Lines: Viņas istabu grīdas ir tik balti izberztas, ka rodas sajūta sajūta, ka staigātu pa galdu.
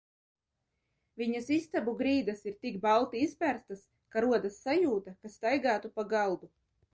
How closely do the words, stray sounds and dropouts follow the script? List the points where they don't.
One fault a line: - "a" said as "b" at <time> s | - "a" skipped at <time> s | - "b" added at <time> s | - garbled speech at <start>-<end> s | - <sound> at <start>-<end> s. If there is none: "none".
- "sajūta" skipped at 5.2 s